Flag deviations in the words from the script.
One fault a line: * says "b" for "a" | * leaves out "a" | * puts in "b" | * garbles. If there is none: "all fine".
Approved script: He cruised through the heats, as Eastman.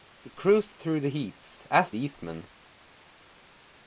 all fine